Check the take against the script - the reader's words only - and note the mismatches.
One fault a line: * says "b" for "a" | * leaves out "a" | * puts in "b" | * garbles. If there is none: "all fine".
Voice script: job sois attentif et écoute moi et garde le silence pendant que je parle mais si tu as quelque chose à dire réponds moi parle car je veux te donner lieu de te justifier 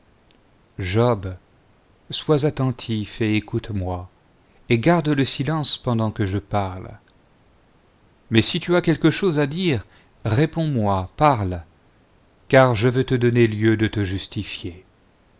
all fine